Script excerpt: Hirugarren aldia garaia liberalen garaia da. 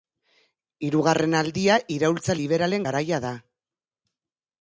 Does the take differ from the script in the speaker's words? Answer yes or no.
yes